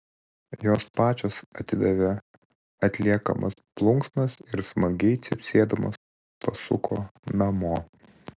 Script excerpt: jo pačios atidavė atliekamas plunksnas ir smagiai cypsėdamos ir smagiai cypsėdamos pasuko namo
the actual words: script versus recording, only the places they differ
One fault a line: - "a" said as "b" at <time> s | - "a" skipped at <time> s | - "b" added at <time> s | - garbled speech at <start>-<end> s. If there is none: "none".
- "jo" said as "jos" at 0.7 s
- "ir smagiai cypsėdamos" skipped at 6.0 s